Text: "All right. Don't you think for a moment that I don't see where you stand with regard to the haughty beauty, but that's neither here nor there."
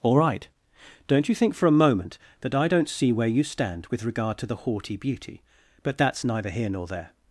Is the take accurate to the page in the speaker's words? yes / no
yes